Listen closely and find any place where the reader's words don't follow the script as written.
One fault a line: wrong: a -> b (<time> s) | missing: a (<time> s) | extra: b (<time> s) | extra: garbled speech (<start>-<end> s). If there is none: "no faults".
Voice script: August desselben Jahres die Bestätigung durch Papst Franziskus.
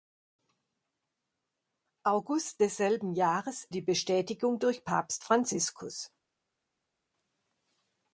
no faults